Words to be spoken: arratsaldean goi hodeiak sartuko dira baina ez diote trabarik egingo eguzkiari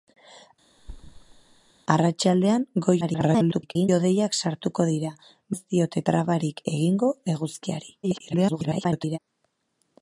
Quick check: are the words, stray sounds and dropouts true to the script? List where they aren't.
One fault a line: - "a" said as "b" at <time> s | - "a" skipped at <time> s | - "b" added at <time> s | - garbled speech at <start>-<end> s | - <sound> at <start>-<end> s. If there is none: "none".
- thud at 0.8-1.7 s
- garbled speech at 3.0-3.9 s
- "baina" skipped at 5.1 s
- garbled speech at 8.0-9.2 s